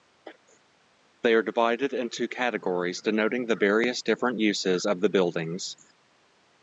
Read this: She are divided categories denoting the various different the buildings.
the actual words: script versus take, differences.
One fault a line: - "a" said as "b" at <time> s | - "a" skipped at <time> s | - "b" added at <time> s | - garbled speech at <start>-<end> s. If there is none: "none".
- "She" said as "They" at 1.2 s
- "into" added at 1.9 s
- "uses of" added at 4.4 s